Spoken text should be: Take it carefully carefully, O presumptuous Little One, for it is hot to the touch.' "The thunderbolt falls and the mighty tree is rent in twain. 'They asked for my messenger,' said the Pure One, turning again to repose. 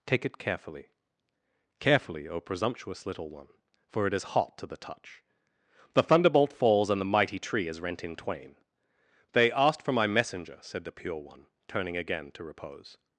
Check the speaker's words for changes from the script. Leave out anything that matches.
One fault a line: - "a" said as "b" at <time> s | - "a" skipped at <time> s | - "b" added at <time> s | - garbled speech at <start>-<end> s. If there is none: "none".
none